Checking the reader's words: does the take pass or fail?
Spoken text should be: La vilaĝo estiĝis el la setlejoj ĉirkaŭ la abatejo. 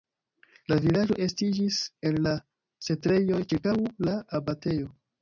pass